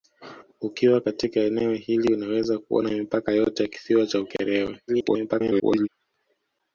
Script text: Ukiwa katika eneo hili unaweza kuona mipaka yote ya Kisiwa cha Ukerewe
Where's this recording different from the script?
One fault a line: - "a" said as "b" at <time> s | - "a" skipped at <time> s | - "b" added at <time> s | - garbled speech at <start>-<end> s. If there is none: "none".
- garbled speech at 4.9-5.9 s